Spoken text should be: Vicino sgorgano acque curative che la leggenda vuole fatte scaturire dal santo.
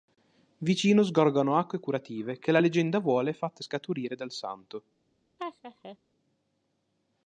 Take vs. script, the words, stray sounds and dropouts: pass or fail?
fail